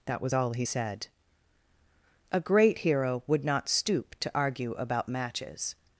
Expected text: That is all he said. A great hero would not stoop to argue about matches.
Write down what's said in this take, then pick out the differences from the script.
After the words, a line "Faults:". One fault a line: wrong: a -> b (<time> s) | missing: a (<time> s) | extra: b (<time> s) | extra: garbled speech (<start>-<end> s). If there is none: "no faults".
That was all he said. A great hero would not stoop to argue about matches.
Faults:
wrong: is -> was (0.2 s)